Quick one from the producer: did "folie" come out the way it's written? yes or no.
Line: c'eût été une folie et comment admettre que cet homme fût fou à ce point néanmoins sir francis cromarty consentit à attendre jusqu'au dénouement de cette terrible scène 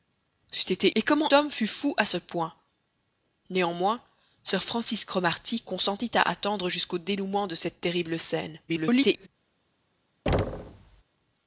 no